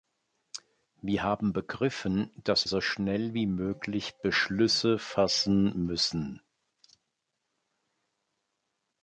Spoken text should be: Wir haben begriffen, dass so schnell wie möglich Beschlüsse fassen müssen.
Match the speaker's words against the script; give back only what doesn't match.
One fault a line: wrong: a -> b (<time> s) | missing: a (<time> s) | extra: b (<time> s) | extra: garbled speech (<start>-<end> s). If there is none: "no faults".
no faults